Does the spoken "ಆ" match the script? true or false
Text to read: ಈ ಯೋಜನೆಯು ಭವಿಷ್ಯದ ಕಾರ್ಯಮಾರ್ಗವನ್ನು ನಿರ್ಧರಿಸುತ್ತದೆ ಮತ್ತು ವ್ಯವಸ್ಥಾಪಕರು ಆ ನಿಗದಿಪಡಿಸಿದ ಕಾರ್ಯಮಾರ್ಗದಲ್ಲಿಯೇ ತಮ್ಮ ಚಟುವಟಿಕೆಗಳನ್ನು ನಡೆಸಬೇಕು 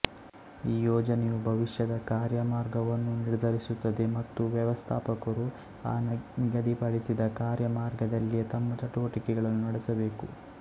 true